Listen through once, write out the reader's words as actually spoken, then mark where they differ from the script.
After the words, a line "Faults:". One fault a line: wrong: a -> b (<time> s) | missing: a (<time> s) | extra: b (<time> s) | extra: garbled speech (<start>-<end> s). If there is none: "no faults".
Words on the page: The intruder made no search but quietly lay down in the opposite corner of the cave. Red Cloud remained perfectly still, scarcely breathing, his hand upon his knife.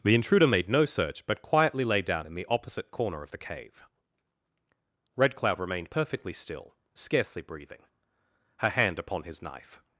The intruder made no search but quietly lay down in the opposite corner of the cave. Red Cloud remained perfectly still, scarcely breathing, her hand upon his knife.
Faults:
wrong: his -> her (8.6 s)